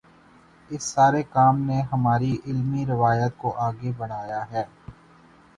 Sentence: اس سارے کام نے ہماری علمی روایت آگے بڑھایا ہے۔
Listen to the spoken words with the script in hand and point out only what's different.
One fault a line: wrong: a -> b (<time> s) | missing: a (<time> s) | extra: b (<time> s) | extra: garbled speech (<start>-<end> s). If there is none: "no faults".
extra: کو (3.4 s)